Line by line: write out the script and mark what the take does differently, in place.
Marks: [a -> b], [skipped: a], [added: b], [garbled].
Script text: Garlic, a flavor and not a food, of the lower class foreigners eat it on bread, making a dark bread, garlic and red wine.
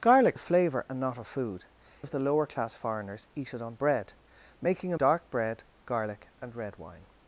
Garlic, a flavor and not a food, of the lower class foreigners eat it on bread, making a dark bread, garlic and red wine.